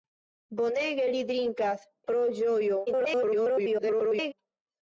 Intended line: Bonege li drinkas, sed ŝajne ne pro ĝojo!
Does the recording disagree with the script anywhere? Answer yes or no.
yes